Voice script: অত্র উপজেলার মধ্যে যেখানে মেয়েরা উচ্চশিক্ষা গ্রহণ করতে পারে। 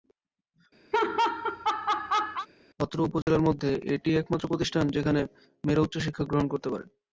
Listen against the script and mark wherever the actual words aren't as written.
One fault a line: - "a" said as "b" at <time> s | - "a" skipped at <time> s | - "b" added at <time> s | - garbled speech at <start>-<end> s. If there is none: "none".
- "এটিই একমাত্র প্রতিষ্ঠান" added at 3.9 s